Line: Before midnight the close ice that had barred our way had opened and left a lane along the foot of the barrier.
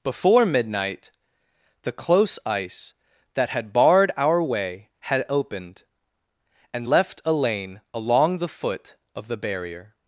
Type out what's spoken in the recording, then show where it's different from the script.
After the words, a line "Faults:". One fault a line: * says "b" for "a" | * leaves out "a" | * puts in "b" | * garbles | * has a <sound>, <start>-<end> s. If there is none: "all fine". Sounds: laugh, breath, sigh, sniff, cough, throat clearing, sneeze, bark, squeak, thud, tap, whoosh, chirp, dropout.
Before midnight the close ice that had barred our way had opened and left a lane along the foot of the barrier.
Faults:
all fine